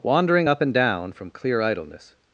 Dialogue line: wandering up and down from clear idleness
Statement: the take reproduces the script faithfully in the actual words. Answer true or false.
true